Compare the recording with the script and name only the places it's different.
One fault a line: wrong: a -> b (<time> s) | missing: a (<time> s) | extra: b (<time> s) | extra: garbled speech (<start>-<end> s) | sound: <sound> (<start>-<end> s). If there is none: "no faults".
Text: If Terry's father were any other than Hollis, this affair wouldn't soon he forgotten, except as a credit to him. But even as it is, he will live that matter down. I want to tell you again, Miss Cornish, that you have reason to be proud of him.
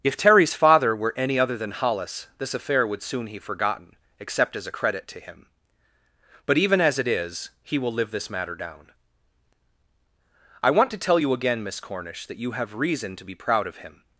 wrong: wouldn't -> would (2.9 s)
wrong: that -> this (8.1 s)